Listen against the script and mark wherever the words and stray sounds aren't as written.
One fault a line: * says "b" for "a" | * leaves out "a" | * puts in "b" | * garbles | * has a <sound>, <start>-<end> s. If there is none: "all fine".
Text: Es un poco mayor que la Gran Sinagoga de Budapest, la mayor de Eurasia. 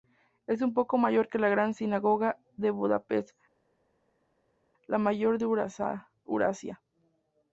all fine